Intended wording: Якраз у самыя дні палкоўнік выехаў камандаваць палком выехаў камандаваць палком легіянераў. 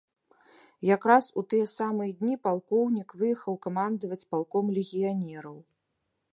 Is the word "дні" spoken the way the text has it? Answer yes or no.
yes